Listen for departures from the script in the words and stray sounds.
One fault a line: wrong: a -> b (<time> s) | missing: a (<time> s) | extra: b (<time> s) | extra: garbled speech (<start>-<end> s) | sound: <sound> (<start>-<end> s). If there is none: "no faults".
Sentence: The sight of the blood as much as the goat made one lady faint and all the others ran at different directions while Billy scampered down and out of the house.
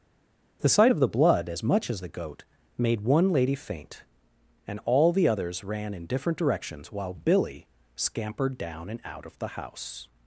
wrong: at -> in (5.9 s)